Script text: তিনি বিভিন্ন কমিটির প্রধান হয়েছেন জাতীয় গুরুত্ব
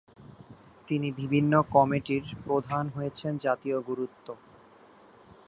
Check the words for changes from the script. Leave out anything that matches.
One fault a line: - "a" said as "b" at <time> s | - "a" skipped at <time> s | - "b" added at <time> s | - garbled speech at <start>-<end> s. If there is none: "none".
none